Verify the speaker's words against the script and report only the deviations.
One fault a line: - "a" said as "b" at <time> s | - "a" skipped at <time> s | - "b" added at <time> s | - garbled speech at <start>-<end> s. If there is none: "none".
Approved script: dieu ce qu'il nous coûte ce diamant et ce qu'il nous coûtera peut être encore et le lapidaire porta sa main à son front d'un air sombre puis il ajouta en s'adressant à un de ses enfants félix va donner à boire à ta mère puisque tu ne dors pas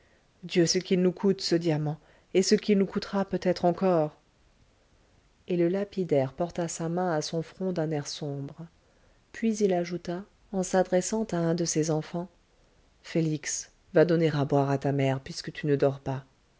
none